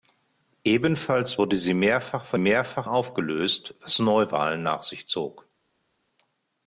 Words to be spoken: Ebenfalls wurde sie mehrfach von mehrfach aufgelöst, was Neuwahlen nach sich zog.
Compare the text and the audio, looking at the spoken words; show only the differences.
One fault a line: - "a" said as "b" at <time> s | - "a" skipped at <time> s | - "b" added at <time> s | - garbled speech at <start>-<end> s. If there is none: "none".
none